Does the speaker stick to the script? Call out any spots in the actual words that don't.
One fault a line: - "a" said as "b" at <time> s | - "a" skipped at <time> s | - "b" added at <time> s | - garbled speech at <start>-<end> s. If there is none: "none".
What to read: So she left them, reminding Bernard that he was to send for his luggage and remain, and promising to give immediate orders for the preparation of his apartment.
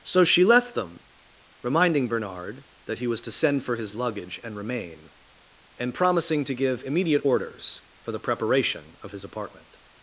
none